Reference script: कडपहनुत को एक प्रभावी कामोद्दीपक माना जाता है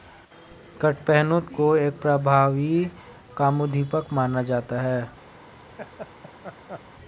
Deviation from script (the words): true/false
false